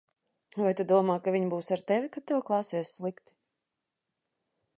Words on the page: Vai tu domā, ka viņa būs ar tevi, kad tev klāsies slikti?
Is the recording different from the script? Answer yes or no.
no